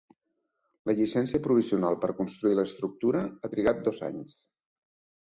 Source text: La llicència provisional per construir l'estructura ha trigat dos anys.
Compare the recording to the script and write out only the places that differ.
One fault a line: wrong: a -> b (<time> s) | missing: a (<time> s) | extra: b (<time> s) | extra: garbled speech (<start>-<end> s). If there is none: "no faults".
no faults